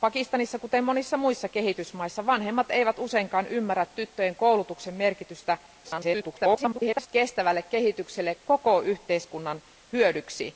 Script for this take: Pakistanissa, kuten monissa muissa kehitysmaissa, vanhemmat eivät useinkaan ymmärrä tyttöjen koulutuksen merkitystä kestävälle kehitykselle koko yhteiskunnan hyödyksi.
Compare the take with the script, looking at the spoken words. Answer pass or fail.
fail